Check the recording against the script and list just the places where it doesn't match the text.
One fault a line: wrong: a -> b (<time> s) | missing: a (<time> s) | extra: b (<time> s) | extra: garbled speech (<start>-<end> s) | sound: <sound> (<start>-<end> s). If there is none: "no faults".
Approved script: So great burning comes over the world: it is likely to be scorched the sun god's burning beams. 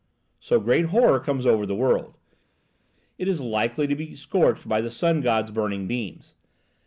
wrong: burning -> horror (0.8 s)
extra: by (4.7 s)